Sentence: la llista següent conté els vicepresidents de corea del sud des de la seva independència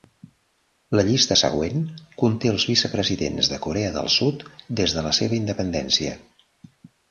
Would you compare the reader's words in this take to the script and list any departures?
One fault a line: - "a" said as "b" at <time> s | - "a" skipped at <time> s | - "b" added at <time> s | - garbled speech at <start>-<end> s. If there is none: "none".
none